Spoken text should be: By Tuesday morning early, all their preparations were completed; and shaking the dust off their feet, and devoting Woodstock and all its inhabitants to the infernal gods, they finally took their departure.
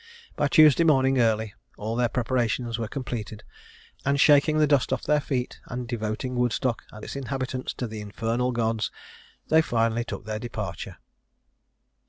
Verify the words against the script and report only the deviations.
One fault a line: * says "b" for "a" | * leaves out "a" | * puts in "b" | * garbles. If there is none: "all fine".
* leaves out "all"